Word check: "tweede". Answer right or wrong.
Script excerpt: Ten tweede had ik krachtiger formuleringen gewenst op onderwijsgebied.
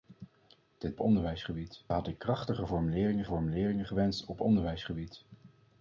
wrong